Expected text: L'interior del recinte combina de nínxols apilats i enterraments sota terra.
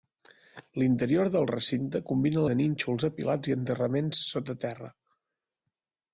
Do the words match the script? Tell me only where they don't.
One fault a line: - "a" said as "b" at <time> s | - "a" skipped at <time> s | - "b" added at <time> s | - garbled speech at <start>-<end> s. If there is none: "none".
none